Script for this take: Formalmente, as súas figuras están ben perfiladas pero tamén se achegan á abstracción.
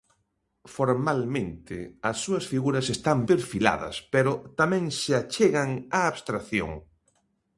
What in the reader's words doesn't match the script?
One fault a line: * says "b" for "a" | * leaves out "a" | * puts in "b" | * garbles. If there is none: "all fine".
* leaves out "ben"